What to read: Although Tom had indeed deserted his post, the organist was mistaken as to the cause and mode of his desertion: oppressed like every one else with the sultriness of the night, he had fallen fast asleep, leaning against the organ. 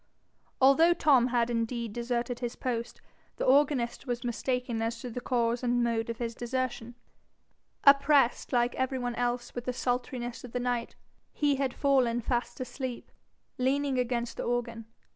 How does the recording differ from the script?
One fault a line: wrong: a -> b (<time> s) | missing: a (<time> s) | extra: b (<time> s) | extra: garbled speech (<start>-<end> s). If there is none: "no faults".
no faults